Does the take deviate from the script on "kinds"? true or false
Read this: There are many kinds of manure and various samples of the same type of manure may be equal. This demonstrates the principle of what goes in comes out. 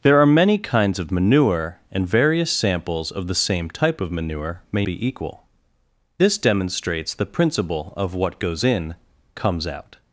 false